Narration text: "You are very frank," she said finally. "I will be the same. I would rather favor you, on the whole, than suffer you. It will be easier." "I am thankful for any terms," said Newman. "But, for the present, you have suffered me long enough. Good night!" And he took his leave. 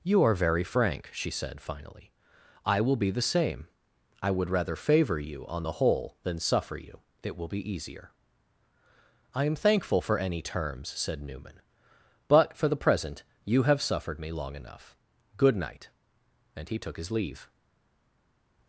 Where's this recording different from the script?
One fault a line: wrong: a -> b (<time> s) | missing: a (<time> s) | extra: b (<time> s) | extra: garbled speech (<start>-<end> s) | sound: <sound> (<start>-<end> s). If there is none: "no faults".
no faults